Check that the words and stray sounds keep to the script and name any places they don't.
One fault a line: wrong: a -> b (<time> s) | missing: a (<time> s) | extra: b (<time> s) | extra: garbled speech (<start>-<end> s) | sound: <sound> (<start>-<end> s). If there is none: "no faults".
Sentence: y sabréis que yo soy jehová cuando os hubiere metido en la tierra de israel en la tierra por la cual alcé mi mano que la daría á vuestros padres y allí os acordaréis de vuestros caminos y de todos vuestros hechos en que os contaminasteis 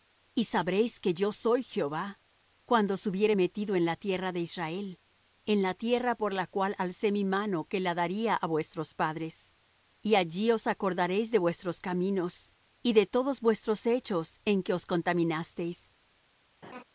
sound: laugh (16.6-16.8 s)